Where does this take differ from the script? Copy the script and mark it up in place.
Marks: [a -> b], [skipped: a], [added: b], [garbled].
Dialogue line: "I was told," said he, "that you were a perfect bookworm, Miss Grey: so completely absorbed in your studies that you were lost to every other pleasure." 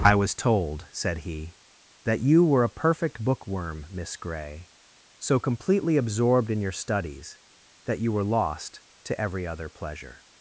"I was told," said he, "that you were a perfect bookworm, Miss Grey: so completely absorbed in your studies that you were lost to every other pleasure."